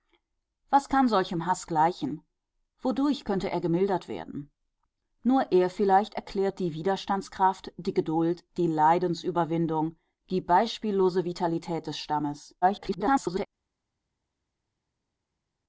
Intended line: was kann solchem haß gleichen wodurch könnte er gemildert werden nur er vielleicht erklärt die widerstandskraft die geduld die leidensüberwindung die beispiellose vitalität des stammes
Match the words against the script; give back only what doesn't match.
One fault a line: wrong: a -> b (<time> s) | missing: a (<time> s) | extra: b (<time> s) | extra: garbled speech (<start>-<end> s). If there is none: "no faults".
extra: garbled speech (12.6-13.5 s)